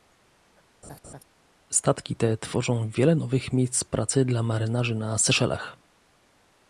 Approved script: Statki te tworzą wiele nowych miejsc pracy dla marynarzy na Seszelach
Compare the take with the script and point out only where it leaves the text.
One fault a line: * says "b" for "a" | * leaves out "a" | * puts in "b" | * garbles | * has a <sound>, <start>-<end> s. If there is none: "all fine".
* has a laugh, 0.8-1.2 s